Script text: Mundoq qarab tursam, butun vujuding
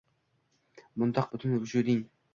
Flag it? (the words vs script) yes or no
yes